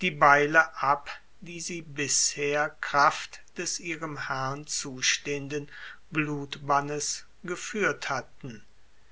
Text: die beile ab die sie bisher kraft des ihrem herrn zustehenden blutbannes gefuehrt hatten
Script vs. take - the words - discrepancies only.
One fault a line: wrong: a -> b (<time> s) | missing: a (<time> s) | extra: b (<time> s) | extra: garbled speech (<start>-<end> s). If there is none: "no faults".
no faults